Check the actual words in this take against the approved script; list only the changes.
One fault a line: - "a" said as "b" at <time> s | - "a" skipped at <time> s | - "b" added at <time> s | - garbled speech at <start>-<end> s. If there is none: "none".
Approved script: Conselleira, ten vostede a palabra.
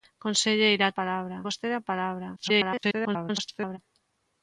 - "ten" said as "palabra" at 1.0 s
- garbled speech at 2.4-3.8 s